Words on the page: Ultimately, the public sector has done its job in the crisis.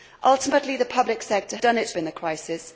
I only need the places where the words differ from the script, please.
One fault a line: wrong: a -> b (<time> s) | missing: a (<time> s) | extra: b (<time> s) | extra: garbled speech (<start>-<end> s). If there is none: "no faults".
missing: has (1.6 s)
missing: job (1.9 s)